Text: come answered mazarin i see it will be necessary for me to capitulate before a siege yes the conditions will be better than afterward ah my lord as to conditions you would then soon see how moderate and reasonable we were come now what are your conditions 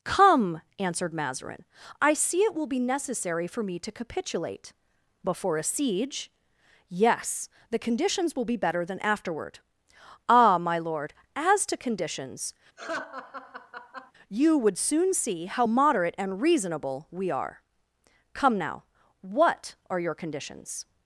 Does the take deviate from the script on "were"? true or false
true